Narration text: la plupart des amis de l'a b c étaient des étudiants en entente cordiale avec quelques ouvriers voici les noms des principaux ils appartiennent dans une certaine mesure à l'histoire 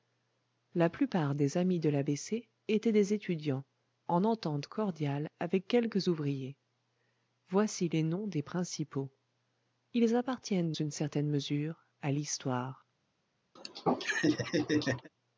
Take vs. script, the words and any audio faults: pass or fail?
fail